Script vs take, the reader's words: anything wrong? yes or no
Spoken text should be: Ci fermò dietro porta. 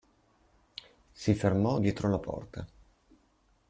yes